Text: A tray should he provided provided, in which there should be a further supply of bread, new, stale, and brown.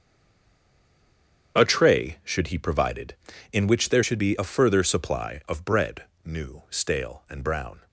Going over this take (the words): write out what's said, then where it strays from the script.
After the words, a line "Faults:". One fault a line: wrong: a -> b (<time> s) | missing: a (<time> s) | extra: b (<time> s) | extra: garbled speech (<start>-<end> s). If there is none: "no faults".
A tray should he provided, in which there should be a further supply of bread, new, stale, and brown.
Faults:
missing: provided (3.1 s)